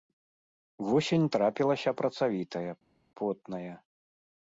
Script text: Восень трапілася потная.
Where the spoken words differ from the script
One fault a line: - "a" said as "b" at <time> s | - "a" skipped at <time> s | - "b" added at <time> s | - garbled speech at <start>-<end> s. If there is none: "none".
- "працавітая" added at 2.0 s